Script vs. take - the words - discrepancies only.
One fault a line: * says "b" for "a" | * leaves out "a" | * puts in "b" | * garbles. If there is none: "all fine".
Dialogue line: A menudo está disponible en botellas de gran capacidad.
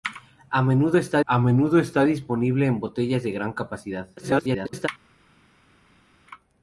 * puts in "a menudo está"
* garbles